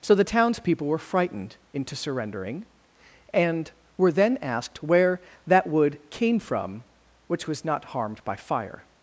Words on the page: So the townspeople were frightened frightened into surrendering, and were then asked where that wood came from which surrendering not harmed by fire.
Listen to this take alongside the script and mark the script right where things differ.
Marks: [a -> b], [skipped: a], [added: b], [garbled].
So the townspeople were frightened [skipped: frightened] into surrendering, and were then asked where that wood came from which [surrendering -> was] not harmed by fire.